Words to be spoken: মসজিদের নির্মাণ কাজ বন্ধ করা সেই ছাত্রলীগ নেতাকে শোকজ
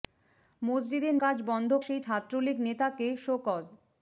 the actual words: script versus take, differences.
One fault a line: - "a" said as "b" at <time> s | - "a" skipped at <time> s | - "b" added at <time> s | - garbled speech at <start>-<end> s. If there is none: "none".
- "নির্মাণ" skipped at 1.1 s
- "করা" skipped at 1.7 s